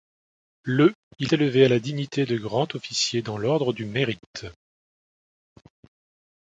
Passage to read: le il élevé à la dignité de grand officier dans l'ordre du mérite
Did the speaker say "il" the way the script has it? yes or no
yes